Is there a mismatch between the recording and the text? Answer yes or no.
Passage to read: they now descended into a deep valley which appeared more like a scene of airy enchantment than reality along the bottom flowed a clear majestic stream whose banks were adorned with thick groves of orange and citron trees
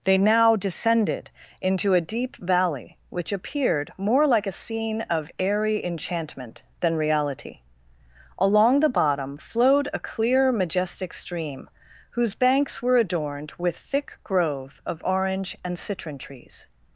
yes